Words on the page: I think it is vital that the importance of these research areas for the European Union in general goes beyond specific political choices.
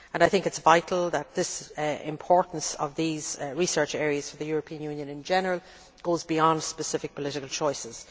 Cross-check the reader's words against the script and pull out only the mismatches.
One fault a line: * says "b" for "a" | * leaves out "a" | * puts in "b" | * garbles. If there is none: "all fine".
all fine